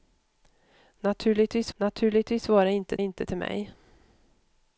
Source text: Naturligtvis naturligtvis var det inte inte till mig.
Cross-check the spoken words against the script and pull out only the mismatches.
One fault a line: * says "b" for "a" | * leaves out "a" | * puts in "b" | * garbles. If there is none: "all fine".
all fine